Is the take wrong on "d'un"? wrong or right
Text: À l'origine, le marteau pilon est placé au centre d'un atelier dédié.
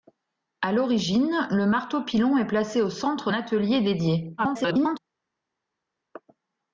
wrong